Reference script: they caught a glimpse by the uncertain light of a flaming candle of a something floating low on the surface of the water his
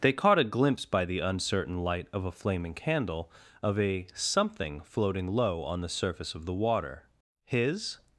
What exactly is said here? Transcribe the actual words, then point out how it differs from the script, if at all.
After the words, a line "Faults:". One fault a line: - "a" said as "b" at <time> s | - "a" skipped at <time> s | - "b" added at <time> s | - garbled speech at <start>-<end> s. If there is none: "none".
they caught a glimpse by the uncertain light of a flaming candle of a something floating low on the surface of the water his
Faults:
none